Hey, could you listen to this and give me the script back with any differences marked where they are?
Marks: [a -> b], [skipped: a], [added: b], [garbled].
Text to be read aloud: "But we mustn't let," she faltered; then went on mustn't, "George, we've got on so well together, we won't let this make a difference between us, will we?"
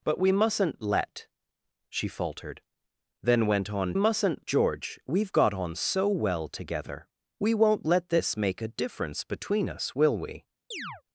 "But we mustn't let," she faltered; then went on mustn't, "George, we've got on so well together, we won't let this make a difference between us, will we?"